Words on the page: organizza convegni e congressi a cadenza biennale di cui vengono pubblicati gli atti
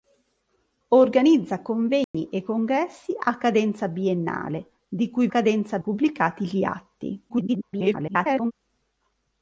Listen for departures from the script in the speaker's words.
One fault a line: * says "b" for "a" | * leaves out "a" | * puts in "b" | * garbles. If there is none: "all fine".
* says "cadenza" for "vengono"
* garbles